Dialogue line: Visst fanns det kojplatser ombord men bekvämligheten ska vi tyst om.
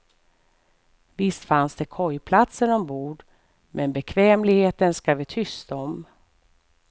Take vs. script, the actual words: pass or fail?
pass